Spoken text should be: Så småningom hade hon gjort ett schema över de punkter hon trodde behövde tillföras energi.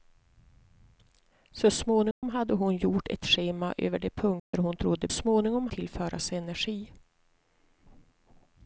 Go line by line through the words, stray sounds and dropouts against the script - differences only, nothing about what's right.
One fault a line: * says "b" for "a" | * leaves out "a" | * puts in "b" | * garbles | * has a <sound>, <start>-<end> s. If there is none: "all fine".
* has a dropout, 2.1-2.2 s
* has a dropout, 4.4-4.5 s
* says "småningom" for "behövde"